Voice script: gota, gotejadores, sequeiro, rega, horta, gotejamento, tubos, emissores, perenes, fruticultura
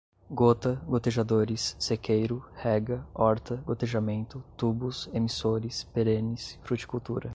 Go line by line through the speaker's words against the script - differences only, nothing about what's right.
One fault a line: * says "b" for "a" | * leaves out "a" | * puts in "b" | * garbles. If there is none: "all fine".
all fine